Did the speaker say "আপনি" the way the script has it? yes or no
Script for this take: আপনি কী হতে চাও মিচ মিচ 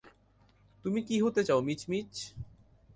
no